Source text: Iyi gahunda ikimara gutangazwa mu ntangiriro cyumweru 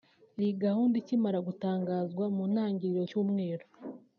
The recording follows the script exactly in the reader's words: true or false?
true